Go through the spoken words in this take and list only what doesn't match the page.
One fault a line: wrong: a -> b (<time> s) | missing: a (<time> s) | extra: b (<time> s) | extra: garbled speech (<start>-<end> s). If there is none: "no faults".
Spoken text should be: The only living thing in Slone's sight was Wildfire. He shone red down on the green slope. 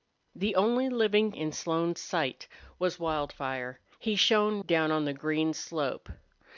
missing: thing (1.3 s)
missing: red (4.6 s)